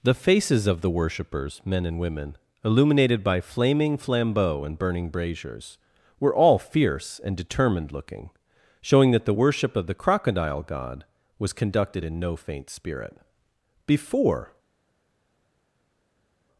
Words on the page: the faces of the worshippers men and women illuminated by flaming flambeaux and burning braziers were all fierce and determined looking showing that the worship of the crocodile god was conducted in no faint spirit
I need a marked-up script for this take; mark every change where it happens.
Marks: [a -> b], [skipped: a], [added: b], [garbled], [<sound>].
the faces of the worshippers men and women illuminated by flaming flambeaux and burning braziers were all fierce and determined looking showing that the worship of the crocodile god was conducted in no faint spirit [added: before]